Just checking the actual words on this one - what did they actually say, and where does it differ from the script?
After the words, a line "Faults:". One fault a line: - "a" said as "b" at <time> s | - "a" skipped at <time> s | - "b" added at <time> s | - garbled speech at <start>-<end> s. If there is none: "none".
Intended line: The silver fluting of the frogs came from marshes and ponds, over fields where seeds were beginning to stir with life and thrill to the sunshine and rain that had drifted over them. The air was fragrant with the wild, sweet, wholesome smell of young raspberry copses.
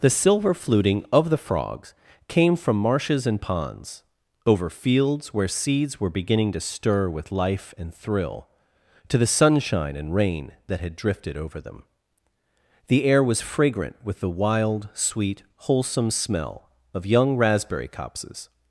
The silver fluting of the frogs came from marshes and ponds, over fields where seeds were beginning to stir with life and thrill to the sunshine and rain that had drifted over them. The air was fragrant with the wild, sweet, wholesome smell of young raspberry copses.
Faults:
none